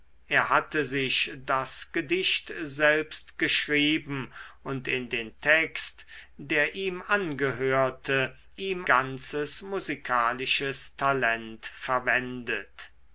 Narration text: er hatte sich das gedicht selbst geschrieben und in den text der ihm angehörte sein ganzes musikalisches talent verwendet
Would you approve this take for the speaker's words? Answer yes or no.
no